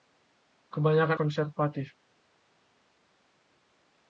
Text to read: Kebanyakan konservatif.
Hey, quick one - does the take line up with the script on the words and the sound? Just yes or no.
yes